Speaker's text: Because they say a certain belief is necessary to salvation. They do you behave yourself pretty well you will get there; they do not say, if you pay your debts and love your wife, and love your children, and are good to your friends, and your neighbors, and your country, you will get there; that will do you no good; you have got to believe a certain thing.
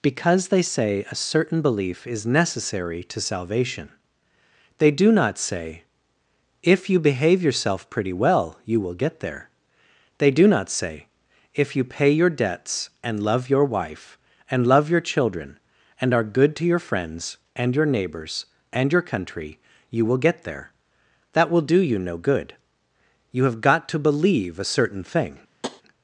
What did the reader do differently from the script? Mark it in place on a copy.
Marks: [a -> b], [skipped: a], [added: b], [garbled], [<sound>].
Because they say a certain belief is necessary to salvation. They do [added: not say if] you behave yourself pretty well you will get there; they do not say, if you pay your debts and love your wife, and love your children, and are good to your friends, and your neighbors, and your country, you will get there; that will do you no good; you have got to believe a certain thing. [tap]